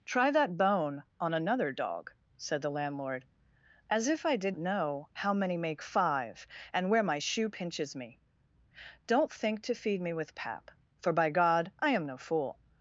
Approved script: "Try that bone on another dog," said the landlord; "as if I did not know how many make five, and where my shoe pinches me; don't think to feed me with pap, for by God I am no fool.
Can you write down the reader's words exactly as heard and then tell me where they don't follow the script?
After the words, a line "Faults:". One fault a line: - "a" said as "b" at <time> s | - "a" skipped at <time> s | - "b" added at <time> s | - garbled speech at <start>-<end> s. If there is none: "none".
"Try that bone on another dog," said the landlord; "as if I did know how many make five, and where my shoe pinches me; don't think to feed me with pap, for by God I am no fool.
Faults:
- "not" skipped at 4.5 s